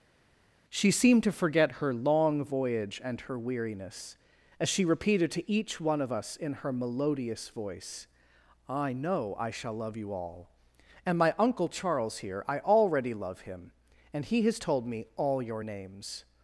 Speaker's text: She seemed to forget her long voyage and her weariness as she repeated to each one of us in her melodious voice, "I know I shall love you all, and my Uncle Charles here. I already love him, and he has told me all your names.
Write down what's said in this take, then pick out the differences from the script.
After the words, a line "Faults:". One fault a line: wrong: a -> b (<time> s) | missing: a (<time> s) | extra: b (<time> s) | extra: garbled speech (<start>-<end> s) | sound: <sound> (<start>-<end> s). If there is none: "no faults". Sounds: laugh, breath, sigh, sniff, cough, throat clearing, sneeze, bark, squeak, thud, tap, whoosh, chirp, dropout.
She seemed to forget her long voyage and her weariness as she repeated to each one of us in her melodious voice, "I know I shall love you all, and my Uncle Charles here. I already love him, and he has told me all your names.
Faults:
no faults